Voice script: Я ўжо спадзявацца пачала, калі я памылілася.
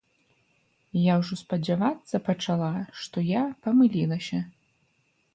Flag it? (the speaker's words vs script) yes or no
yes